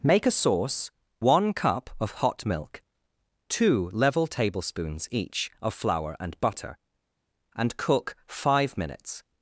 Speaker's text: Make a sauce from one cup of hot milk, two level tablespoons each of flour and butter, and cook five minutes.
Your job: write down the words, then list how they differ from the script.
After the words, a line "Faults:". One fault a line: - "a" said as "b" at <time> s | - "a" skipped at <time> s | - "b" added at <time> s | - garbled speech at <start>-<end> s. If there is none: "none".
Make a sauce one cup of hot milk, two level tablespoons each of flour and butter, and cook five minutes.
Faults:
- "from" skipped at 0.9 s